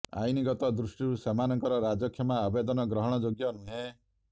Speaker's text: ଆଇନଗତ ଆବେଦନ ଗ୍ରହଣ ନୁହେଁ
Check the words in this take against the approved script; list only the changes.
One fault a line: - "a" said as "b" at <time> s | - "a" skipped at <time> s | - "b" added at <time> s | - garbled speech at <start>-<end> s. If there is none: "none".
- "ଦୃଷ୍ଟିରୁ ସେମାନଙ୍କର ରାଜକ୍ଷମା" added at 0.8 s
- "ଯୋଗ୍ୟ" added at 3.2 s